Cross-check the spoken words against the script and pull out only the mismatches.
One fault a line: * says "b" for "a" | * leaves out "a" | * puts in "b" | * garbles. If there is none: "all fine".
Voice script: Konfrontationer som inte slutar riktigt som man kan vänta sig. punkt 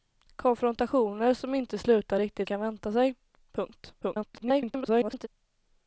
* leaves out "som man"
* garbles